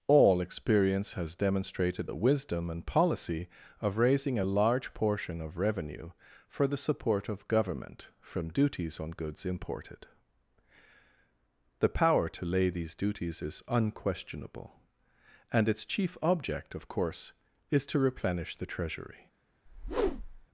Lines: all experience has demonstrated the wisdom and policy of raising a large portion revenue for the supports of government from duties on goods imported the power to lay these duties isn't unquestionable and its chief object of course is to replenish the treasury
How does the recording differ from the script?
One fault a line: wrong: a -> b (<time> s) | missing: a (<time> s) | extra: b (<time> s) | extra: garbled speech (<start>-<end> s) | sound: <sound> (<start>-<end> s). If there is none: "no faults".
extra: of (5.4 s)
wrong: supports -> support (6.8 s)
wrong: isn't -> is (13.4 s)
sound: whoosh (19.7-20.5 s)